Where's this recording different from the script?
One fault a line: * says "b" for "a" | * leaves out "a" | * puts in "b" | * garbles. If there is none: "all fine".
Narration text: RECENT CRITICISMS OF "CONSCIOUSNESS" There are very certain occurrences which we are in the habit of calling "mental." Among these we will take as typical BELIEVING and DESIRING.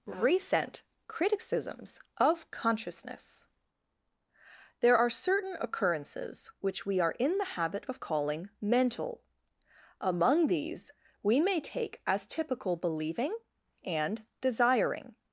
* leaves out "very"
* says "may" for "will"